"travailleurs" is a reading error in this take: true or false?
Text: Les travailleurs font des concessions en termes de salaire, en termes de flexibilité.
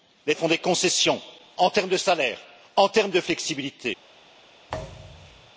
true